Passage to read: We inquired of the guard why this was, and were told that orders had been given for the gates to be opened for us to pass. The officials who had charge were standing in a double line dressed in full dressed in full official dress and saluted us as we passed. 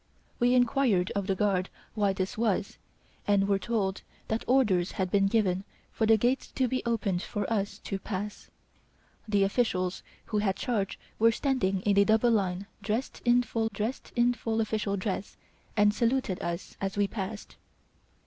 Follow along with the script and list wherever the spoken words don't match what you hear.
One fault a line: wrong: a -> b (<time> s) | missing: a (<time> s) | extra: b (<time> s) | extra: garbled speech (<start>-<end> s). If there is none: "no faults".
no faults